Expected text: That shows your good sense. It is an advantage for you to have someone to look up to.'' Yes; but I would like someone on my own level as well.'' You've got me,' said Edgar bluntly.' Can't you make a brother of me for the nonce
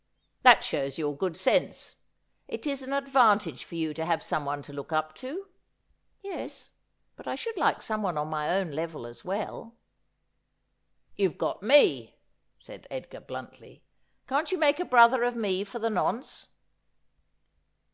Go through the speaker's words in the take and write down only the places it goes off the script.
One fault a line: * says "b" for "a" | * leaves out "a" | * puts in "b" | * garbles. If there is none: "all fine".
* says "should" for "would"